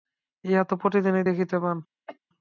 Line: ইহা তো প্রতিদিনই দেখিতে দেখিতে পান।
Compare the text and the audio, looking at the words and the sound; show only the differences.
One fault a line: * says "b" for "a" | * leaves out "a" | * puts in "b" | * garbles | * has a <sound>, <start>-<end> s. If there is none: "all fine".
* leaves out "দেখিতে"
* has a cough, 2.1-2.2 s